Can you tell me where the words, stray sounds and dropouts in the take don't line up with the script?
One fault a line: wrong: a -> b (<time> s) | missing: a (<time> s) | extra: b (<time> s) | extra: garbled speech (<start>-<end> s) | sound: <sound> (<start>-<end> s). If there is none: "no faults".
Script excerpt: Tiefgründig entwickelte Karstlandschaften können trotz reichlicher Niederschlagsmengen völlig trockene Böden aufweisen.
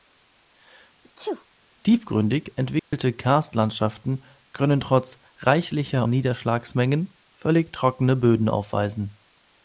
sound: sneeze (1.0-1.5 s)
sound: dropout (2.8-2.9 s)